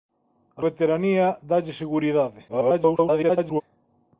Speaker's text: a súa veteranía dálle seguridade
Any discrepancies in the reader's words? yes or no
yes